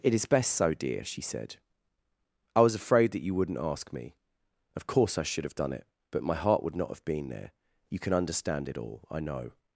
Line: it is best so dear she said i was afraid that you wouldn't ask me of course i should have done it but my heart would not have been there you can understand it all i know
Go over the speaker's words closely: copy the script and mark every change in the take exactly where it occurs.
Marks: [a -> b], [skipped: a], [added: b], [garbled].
it is best so dear she said i was afraid that you wouldn't ask me of course i should have done it but my heart would not have been there you can understand it all i know